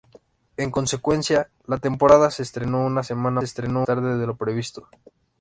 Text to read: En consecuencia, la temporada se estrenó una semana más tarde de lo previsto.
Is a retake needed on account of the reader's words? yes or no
yes